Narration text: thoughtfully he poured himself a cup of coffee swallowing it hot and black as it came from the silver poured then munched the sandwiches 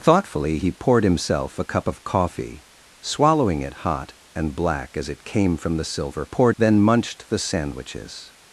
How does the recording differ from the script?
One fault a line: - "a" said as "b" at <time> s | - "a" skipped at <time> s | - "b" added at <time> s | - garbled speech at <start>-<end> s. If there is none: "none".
none